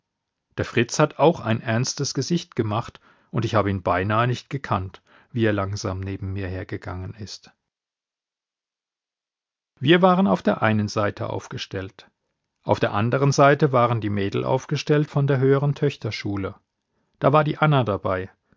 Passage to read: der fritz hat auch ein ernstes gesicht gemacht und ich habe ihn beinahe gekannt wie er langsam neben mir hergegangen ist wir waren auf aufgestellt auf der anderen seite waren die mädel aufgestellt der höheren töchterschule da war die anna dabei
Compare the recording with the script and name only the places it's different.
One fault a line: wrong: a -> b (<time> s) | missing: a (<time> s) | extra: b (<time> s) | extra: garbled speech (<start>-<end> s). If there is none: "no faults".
extra: nicht (4.3 s)
extra: der einen seite (10.4 s)
extra: von (15.1 s)